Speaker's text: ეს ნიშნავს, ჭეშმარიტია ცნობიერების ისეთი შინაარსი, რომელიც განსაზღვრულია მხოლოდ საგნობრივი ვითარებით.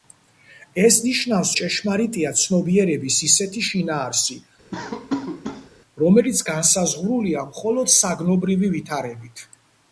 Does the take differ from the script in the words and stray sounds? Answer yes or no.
yes